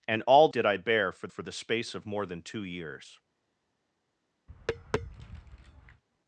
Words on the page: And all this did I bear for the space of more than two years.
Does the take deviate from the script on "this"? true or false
true